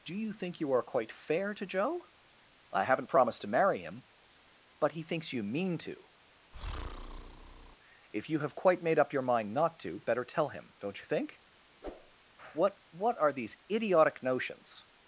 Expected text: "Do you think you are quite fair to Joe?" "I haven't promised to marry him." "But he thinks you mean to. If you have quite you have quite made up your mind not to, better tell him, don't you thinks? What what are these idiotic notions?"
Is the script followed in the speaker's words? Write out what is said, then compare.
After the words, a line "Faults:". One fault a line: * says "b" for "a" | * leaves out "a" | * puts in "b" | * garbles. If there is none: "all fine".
"Do you think you are quite fair to Joe?" "I haven't promised to marry him." "But he thinks you mean to. If you have quite made up your mind not to, better tell him, don't you think? What what are these idiotic notions?"
Faults:
* leaves out "you have quite"
* says "think" for "thinks"